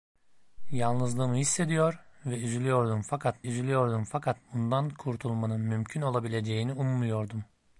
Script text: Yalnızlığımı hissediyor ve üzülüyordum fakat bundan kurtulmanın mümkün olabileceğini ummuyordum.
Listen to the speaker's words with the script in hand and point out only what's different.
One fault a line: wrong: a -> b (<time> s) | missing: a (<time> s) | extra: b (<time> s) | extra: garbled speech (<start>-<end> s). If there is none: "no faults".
extra: üzülüyordum fakat (3.4 s)